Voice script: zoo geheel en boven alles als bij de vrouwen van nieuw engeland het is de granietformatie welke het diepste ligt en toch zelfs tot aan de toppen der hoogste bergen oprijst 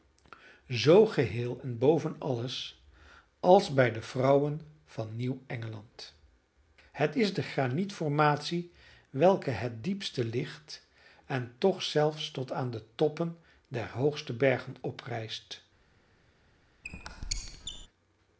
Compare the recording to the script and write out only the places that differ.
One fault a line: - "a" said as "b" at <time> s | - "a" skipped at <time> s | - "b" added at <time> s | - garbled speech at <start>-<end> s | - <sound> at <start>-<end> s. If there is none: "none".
- squeak at 16.8-17.9 s